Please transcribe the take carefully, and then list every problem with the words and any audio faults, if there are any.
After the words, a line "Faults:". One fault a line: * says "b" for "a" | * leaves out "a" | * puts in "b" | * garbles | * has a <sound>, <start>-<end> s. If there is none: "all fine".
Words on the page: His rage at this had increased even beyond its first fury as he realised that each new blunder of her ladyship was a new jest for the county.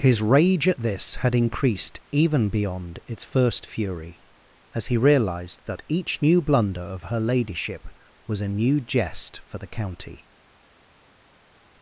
His rage at this had increased even beyond its first fury as he realised that each new blunder of her ladyship was a new jest for the county.
Faults:
all fine